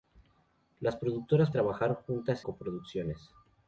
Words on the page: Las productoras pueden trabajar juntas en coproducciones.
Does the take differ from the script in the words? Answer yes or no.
yes